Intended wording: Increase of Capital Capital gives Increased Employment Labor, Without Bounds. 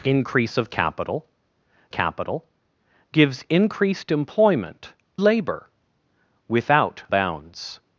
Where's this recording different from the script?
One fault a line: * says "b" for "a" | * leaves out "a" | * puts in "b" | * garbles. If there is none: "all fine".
all fine